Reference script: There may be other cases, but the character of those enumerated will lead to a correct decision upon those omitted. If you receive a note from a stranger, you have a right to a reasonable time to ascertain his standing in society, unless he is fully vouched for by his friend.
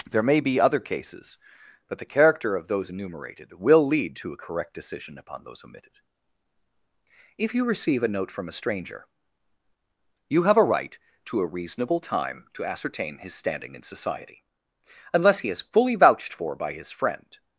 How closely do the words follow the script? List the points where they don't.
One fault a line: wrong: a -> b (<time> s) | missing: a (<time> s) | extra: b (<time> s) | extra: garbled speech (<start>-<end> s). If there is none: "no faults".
no faults